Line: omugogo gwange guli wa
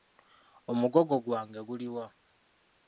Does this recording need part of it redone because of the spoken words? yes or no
no